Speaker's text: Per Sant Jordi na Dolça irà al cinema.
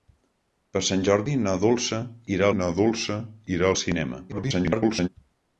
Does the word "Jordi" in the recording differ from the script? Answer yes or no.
no